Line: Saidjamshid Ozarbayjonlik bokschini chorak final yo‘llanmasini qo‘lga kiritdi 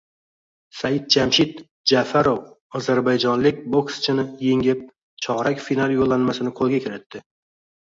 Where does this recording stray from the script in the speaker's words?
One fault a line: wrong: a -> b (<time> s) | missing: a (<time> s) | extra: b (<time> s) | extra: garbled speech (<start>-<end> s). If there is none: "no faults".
extra: Ja'farov (1.9 s)
extra: yengib (4.5 s)